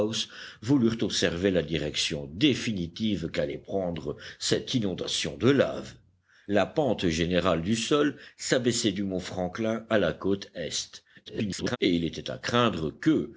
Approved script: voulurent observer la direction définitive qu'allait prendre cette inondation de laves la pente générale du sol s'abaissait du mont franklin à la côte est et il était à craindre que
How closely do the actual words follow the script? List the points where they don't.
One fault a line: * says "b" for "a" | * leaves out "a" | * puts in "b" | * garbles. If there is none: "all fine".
* garbles